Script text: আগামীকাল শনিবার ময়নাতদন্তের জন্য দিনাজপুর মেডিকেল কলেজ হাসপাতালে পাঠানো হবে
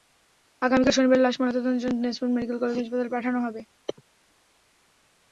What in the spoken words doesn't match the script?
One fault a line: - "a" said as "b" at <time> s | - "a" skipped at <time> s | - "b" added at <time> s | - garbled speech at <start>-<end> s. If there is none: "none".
- "লাশ" added at 1.2 s